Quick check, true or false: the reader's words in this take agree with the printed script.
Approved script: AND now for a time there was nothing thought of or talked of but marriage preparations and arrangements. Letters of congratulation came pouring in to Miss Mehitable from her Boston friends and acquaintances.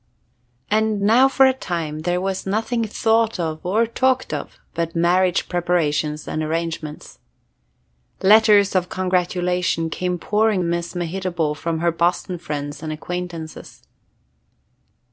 false